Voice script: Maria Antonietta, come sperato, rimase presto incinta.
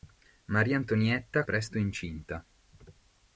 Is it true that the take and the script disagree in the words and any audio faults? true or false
true